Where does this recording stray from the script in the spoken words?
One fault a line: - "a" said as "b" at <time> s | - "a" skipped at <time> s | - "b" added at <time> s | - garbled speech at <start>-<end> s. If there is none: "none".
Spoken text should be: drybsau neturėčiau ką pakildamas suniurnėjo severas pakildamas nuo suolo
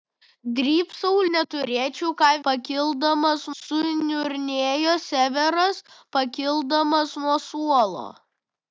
none